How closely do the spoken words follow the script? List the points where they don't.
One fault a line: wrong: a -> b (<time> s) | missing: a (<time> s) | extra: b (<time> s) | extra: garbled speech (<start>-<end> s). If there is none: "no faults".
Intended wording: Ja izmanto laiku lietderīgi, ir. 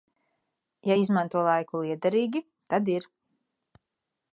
extra: tad (2.7 s)